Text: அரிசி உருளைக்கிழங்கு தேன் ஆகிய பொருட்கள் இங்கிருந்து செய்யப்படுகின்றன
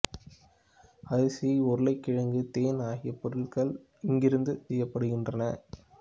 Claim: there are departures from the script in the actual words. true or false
false